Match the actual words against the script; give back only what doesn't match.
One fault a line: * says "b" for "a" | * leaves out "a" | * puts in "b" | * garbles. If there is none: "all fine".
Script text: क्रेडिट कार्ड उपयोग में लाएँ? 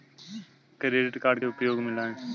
all fine